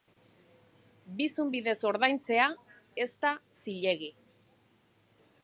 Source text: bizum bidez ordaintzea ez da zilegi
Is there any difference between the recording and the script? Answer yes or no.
no